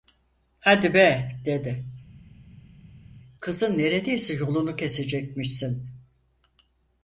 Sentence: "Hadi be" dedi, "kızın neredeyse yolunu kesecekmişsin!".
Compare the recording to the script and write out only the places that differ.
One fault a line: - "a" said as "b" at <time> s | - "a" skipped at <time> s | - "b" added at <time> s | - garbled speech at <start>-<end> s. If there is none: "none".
none